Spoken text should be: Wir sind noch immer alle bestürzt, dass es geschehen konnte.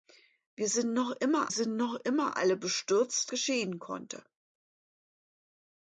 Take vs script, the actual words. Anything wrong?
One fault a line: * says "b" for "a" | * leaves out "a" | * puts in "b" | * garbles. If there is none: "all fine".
* puts in "sind noch immer"
* leaves out "dass es"